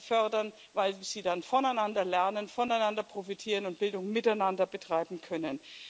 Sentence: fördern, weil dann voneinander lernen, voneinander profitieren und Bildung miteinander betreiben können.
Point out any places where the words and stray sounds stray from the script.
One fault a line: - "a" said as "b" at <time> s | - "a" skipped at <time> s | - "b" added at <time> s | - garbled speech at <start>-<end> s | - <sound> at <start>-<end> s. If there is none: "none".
- "sie" added at 0.9 s